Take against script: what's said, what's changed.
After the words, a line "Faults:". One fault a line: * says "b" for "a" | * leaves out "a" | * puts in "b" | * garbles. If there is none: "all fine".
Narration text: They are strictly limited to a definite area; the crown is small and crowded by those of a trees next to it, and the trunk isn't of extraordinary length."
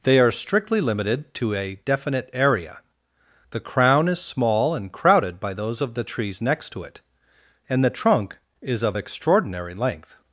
They are strictly limited to a definite area; the crown is small and crowded by those of the trees next to it, and the trunk is of extraordinary length."
Faults:
* says "the" for "a"
* says "is" for "isn't"